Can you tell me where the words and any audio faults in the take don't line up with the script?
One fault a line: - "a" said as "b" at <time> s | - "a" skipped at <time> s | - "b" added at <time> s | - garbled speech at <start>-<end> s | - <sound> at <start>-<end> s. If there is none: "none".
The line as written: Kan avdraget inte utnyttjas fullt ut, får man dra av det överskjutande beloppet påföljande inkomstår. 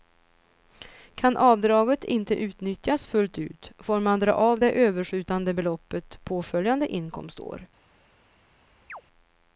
- chirp at 8.9-9.0 s